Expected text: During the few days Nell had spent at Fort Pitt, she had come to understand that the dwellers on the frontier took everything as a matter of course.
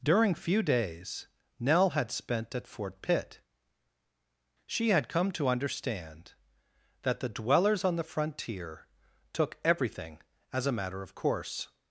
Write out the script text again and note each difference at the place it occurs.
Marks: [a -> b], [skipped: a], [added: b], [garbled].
During [skipped: the] few days Nell had spent at Fort Pitt, she had come to understand that the dwellers on the frontier took everything as a matter of course.